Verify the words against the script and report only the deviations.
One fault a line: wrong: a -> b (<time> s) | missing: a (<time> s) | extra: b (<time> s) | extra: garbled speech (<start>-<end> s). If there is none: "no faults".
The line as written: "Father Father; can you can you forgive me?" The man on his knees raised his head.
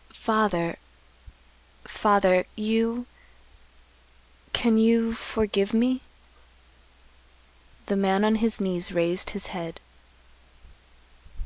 missing: can (2.4 s)